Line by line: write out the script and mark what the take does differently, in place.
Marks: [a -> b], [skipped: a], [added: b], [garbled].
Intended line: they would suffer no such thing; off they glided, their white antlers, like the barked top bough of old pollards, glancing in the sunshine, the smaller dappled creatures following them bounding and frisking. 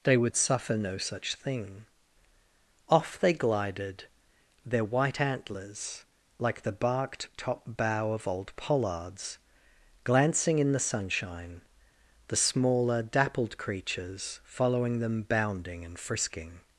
they would suffer no such thing; off they glided, their white antlers, like the barked top bough of old pollards, glancing in the sunshine, the smaller dappled creatures following them bounding and frisking.